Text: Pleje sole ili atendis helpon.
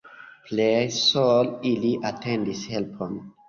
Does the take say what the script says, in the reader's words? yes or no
yes